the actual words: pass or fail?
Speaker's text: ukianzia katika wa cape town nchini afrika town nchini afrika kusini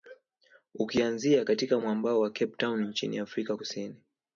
fail